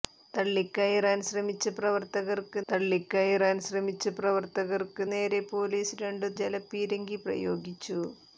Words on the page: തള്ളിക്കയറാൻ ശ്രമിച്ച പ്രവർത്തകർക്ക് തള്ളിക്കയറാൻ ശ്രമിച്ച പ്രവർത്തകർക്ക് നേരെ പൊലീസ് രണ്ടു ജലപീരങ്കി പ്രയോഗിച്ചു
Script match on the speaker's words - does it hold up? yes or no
yes